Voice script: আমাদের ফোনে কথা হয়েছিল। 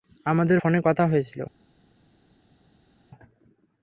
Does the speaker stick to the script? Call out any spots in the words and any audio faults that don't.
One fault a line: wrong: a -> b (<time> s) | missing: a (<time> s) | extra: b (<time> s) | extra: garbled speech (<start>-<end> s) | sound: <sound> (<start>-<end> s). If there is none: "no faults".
no faults